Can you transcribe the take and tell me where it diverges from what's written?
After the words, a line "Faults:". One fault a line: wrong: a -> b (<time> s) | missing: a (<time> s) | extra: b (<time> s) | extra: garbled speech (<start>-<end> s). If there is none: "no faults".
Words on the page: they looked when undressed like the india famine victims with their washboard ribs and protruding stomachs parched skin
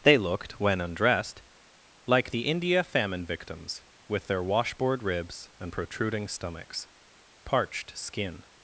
they looked when undressed like the india famine victims with their washboard ribs and protruding stomachs parched skin
Faults:
no faults